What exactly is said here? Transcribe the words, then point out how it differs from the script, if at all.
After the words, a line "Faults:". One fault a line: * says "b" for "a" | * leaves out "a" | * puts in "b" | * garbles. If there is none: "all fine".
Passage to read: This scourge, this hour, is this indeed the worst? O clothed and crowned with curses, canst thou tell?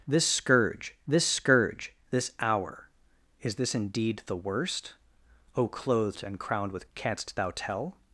This scourge this scourge, this hour, is this indeed the worst? O clothed and crowned with canst thou tell?
Faults:
* puts in "scourge this"
* leaves out "curses"